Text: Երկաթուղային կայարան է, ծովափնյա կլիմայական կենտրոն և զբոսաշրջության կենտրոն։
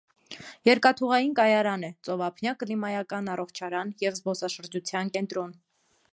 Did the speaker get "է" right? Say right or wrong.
right